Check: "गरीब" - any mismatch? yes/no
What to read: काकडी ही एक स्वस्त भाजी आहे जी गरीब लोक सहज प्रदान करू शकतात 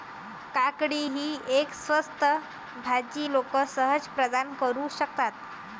yes